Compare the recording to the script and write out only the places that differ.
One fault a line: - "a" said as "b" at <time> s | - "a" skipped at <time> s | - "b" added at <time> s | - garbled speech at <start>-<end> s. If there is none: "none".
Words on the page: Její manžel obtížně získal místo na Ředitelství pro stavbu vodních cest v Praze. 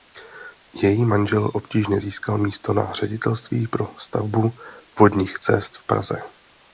none